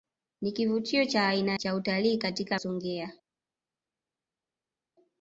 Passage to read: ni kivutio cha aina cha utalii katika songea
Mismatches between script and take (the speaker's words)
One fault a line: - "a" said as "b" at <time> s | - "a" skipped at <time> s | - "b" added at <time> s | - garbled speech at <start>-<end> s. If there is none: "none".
none